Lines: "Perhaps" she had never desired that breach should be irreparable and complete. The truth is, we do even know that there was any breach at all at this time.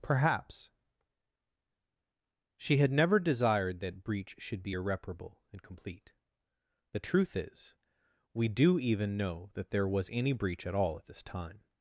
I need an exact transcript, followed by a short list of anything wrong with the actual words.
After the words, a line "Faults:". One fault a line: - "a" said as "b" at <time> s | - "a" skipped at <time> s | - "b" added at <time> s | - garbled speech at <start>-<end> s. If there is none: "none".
"Perhaps" she had never desired that breach should be irreparable and complete. The truth is, we do even know that there was any breach at all at this time.
Faults:
none